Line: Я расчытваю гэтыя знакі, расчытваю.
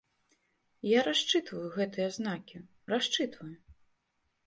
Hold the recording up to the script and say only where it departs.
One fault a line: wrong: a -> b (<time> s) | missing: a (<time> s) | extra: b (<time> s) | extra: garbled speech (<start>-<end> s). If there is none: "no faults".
no faults